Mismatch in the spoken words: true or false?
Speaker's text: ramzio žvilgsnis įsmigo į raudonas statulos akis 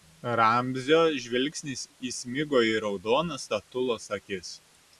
false